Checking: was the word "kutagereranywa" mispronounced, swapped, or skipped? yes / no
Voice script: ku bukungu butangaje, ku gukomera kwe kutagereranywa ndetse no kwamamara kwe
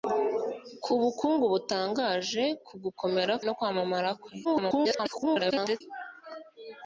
yes